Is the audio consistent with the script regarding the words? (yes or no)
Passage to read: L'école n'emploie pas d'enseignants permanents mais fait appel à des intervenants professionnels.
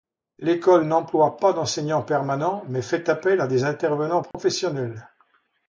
yes